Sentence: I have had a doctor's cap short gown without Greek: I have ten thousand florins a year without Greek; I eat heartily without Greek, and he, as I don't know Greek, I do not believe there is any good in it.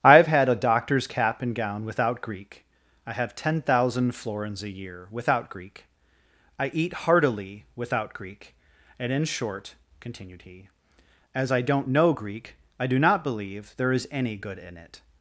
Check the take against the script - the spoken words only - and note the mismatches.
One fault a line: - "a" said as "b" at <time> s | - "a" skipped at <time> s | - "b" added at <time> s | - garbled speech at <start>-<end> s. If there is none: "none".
- "short" said as "and" at 1.4 s
- "in short continued" added at 9.1 s